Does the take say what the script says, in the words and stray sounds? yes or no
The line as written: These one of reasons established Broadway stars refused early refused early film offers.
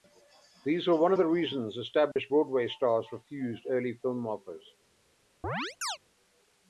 no